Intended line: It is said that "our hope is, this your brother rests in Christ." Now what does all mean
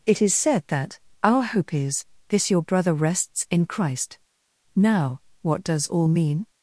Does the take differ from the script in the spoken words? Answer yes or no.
no